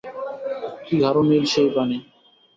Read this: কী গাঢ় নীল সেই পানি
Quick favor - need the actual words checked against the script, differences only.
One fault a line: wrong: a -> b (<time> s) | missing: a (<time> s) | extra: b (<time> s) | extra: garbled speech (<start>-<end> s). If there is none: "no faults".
no faults